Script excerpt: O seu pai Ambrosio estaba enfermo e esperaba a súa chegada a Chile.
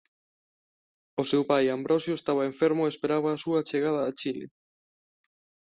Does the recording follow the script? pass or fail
pass